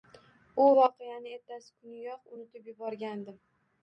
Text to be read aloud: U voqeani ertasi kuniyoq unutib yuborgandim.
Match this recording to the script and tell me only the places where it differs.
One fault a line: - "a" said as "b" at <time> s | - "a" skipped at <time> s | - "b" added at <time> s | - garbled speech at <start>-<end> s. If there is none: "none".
none